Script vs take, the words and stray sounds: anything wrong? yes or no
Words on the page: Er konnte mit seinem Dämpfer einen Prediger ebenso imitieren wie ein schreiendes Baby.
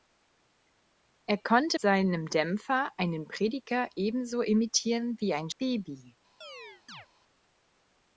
yes